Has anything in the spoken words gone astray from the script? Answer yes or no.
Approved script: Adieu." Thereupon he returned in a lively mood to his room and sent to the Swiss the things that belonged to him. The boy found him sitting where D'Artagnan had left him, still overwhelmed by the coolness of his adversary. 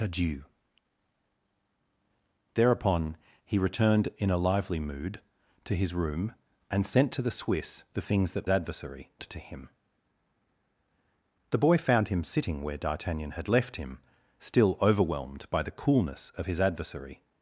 yes